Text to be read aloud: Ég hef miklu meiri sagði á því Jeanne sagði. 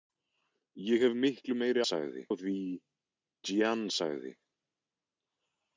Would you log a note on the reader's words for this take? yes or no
no